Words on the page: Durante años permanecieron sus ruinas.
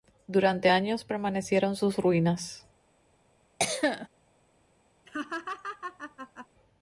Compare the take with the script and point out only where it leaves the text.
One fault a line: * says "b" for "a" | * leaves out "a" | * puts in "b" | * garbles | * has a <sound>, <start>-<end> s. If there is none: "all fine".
* has a cough, 3.6-4.1 s
* has a laugh, 5.1-6.5 s